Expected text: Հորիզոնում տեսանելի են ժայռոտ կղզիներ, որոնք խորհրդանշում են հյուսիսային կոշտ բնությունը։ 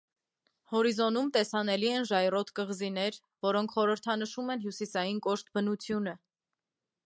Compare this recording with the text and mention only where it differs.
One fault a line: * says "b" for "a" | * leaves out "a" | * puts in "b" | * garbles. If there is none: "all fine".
all fine